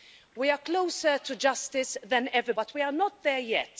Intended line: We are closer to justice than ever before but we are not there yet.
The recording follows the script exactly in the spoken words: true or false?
false